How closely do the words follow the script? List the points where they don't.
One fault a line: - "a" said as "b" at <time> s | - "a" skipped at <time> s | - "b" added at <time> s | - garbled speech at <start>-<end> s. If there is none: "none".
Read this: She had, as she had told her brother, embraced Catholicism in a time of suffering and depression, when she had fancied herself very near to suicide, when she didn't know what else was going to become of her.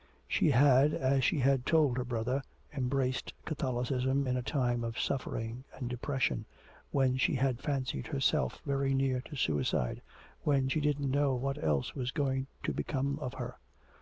none